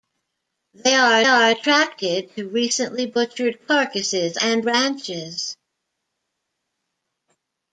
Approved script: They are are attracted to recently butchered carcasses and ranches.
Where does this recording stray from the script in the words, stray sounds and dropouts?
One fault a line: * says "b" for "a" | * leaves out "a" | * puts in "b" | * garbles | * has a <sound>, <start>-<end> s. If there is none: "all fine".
all fine